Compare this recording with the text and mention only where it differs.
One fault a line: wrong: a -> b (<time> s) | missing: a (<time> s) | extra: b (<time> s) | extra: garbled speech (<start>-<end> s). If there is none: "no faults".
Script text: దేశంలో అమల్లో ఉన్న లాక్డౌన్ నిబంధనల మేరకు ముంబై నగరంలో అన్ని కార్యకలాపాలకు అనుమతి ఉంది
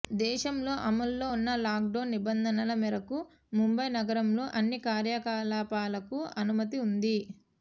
no faults